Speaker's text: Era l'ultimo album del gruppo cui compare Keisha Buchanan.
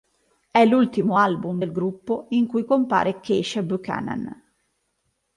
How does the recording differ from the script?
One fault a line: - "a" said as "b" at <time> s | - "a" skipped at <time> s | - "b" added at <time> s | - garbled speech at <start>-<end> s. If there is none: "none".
- "Era" said as "È" at 0.5 s
- "in" added at 2.3 s